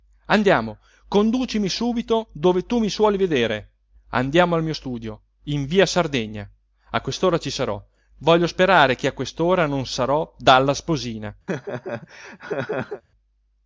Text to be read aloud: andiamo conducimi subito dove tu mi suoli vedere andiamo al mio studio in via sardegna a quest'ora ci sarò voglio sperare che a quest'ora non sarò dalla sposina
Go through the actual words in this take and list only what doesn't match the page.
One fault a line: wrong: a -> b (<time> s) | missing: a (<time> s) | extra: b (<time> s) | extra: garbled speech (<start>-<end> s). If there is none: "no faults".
no faults